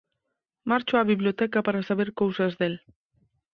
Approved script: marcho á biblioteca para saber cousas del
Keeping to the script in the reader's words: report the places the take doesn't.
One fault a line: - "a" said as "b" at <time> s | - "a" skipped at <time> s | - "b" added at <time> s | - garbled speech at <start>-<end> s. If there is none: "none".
none